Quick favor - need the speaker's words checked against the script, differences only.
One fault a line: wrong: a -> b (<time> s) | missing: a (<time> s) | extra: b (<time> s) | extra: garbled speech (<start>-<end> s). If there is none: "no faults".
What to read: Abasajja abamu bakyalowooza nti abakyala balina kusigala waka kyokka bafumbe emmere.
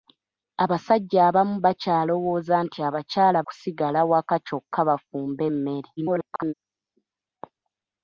missing: balina (3.4 s)
extra: garbled speech (6.0-6.5 s)